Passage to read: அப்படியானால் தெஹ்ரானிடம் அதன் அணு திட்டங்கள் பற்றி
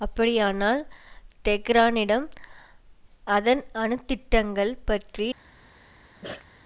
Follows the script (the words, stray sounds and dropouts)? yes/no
no